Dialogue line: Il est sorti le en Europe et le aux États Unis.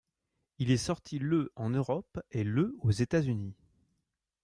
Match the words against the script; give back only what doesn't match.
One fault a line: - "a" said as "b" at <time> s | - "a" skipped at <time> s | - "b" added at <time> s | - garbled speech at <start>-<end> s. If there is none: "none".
none